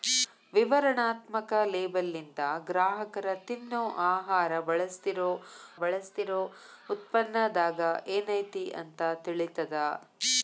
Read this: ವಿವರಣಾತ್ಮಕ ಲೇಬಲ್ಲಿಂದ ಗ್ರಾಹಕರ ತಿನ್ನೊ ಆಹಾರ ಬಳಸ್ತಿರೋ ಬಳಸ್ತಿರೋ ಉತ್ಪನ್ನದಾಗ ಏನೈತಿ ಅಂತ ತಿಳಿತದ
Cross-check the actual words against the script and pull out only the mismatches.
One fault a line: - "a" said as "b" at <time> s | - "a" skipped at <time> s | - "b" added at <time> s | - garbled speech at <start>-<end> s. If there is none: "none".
none